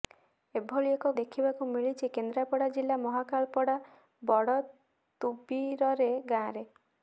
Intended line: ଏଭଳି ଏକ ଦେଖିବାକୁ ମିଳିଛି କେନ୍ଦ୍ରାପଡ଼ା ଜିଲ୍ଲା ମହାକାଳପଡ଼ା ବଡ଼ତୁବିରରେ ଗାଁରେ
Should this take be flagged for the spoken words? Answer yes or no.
no